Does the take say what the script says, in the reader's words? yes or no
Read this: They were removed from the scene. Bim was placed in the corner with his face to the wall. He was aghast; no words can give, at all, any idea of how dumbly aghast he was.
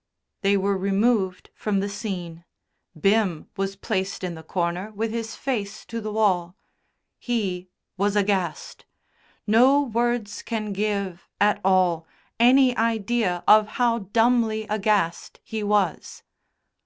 yes